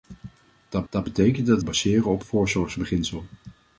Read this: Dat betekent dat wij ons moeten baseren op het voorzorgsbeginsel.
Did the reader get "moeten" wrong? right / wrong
wrong